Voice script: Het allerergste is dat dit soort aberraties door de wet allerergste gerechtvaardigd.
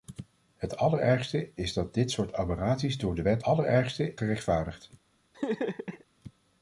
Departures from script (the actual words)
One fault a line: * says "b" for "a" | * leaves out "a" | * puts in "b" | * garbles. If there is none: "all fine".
all fine